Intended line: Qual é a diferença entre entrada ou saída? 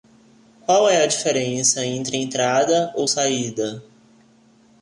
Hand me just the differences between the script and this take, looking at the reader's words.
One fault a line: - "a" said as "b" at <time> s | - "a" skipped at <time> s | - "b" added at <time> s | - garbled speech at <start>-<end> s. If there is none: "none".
none